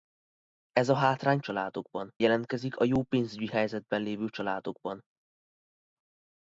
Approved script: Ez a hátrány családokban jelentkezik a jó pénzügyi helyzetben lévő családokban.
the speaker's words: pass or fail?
pass